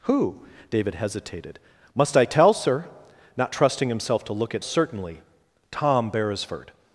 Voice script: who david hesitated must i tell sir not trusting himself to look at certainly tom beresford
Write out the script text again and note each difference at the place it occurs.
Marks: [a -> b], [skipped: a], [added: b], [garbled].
who david hesitated must i tell sir not trusting himself to look at certainly tom beresford